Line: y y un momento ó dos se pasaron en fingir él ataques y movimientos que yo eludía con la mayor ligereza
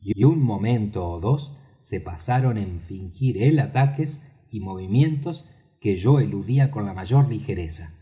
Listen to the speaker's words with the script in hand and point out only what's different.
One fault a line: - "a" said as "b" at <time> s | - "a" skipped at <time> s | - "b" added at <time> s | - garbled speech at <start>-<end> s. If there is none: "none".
none